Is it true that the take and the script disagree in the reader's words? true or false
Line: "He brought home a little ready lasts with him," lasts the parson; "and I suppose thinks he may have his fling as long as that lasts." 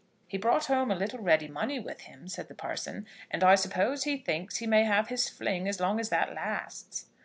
true